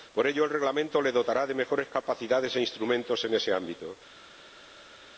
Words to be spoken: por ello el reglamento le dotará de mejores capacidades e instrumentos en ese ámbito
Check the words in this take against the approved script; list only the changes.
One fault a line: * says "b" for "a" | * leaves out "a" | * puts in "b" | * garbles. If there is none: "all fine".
all fine